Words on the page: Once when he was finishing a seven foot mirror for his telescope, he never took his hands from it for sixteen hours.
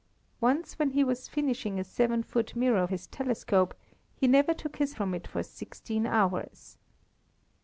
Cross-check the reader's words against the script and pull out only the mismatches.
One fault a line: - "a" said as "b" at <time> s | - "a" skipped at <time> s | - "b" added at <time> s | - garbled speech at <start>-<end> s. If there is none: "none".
- "for" skipped at 2.9 s
- "hands" skipped at 4.9 s